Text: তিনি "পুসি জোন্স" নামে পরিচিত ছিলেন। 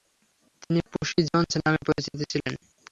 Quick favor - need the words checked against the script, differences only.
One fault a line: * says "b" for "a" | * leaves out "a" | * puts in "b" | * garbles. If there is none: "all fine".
all fine